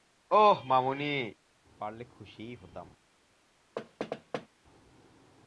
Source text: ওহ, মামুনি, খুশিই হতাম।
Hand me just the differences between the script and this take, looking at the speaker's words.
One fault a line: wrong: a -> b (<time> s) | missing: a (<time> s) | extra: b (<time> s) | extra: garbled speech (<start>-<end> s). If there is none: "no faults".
extra: পারলে (1.8 s)